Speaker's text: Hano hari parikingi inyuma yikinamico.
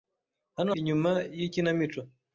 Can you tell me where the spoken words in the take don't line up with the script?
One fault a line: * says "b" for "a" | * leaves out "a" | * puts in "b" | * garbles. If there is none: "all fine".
* leaves out "hari parikingi"